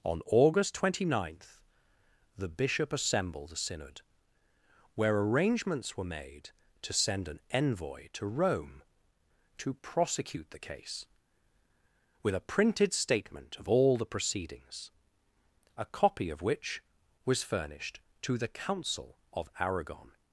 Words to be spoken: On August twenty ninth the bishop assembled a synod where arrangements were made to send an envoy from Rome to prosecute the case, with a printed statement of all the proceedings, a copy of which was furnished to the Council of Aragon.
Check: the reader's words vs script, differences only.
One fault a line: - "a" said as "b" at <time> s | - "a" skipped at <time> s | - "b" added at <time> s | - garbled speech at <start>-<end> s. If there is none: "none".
- "from" said as "to" at 8.1 s